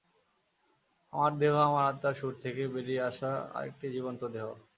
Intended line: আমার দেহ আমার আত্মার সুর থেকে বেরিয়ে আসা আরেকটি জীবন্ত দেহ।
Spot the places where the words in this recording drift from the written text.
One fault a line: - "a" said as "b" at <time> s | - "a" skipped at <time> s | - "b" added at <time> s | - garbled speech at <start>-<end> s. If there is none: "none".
none